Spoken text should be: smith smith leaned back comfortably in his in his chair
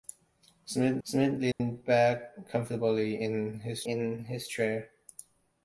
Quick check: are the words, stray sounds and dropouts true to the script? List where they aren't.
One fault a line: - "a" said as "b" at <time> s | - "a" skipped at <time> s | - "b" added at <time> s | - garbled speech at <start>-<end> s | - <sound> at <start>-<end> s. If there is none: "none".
- dropout at 1.5-1.6 s